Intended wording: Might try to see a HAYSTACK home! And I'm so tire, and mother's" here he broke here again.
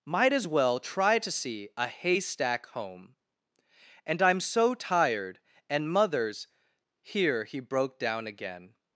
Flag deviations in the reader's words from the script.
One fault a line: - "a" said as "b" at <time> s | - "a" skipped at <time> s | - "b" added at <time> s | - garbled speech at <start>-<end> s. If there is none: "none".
- "as well" added at 0.3 s
- "tire" said as "tired" at 4.7 s
- "here" said as "down" at 8.0 s